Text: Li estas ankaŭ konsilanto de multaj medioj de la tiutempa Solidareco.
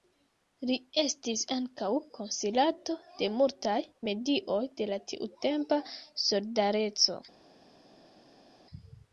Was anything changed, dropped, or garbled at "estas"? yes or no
yes